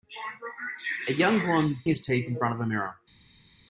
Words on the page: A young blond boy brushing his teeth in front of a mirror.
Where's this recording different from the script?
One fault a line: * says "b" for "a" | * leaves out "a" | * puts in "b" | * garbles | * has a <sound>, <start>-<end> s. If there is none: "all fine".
* leaves out "boy brushing"